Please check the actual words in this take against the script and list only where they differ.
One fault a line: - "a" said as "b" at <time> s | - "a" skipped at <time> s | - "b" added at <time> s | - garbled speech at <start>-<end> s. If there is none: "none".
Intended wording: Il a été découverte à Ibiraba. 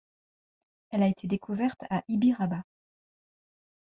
- "Il" said as "Elle" at 0.9 s